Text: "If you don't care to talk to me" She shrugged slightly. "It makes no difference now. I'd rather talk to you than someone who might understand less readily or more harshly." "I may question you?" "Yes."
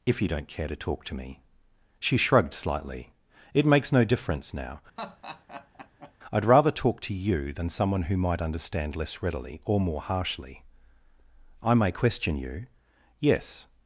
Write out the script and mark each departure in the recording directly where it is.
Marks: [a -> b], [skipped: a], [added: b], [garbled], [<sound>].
"If you don't care to talk to me" She shrugged slightly. "It makes no difference now. [laugh] I'd rather talk to you than someone who might understand less readily or more harshly." "I may question you?" "Yes."